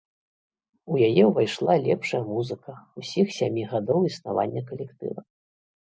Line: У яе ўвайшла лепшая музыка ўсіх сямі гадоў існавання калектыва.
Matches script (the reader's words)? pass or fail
pass